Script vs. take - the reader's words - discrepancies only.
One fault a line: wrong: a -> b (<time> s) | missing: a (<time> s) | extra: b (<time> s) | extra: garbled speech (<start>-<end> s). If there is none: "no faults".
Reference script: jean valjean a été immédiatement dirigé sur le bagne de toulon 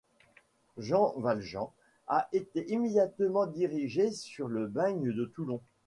no faults